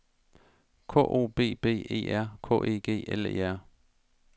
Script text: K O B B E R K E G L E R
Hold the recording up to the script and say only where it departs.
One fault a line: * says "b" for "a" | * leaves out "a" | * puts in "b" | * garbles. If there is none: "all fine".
all fine